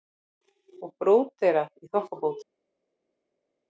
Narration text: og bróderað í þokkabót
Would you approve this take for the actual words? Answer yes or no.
yes